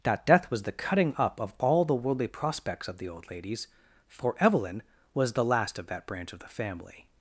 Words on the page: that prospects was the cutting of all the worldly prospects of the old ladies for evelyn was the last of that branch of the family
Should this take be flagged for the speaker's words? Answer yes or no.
yes